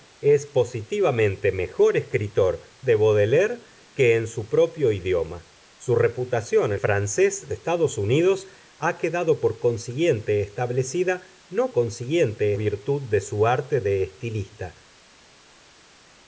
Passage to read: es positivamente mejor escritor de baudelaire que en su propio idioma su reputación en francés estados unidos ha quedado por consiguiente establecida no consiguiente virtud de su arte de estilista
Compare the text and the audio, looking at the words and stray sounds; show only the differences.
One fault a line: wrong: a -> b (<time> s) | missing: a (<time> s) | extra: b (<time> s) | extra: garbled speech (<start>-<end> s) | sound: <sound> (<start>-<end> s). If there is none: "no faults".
no faults